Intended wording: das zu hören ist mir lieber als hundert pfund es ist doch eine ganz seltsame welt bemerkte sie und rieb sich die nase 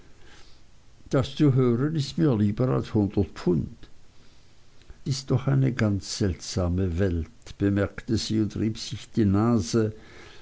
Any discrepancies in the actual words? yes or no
yes